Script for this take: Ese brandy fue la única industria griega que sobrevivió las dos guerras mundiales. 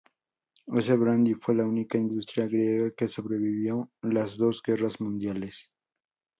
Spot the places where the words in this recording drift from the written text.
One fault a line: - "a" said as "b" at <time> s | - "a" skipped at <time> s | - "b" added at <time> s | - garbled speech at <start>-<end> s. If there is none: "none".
none